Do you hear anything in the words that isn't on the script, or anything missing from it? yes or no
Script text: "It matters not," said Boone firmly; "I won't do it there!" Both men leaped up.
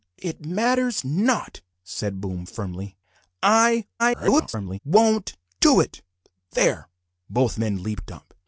yes